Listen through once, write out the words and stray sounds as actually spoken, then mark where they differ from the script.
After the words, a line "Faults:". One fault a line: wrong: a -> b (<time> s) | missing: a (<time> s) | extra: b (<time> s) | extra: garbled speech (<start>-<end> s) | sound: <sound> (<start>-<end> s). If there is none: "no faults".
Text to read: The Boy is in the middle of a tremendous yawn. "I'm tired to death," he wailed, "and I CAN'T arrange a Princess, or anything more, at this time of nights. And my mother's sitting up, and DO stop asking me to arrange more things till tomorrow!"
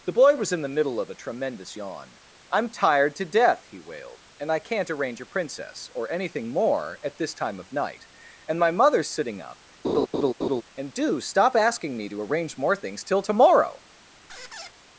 The Boy was in the middle of a tremendous yawn. "I'm tired to death," he wailed, "and I CAN'T arrange a Princess, or anything more, at this time of night. And my mother's sitting up, and DO stop asking me to arrange more things till tomorrow!"
Faults:
wrong: is -> was (0.3 s)
wrong: nights -> night (7.7 s)
sound: laugh (9.8-10.6 s)
sound: squeak (14.3-14.7 s)